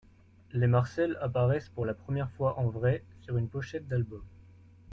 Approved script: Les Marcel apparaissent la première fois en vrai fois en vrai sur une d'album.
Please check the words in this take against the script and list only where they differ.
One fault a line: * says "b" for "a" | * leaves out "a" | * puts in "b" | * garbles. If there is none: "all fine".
* puts in "pour"
* leaves out "fois en vrai"
* puts in "pochette"